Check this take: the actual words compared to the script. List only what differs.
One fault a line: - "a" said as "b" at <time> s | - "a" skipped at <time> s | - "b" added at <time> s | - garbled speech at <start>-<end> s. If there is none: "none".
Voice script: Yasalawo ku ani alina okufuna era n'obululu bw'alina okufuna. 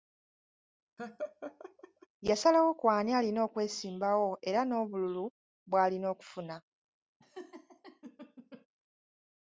- "okufuna" said as "okwesimbawo" at 3.5 s